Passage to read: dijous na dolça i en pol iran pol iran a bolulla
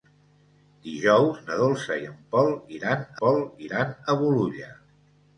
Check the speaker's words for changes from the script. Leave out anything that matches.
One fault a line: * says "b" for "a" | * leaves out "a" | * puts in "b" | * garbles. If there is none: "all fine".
all fine